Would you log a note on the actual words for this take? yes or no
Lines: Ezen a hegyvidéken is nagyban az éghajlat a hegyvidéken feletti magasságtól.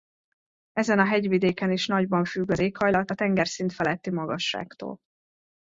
yes